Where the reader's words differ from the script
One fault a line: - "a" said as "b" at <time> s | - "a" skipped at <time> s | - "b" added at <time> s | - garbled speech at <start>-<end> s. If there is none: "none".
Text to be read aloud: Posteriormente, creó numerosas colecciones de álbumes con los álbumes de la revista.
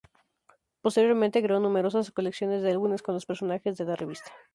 - "álbumes" said as "personajes" at 3.2 s